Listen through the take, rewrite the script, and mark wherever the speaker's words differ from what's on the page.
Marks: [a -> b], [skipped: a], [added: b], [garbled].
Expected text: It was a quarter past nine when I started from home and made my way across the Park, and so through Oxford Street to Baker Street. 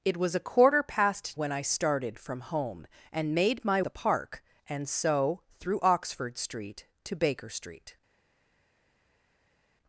It was a quarter past [skipped: nine] when I started from home and made my [skipped: way across] the Park, and so through Oxford Street to Baker Street.